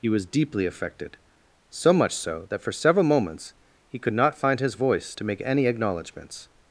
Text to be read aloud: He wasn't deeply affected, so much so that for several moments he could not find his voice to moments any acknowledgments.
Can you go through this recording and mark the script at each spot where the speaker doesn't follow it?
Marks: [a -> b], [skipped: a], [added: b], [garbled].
He [wasn't -> was] deeply affected, so much so that for several moments he could not find his voice to [moments -> make] any acknowledgments.